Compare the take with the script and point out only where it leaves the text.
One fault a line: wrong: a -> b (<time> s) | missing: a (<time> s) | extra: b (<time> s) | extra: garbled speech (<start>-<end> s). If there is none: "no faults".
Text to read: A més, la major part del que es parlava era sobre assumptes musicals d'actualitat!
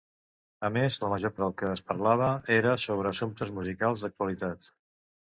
missing: part (1.3 s)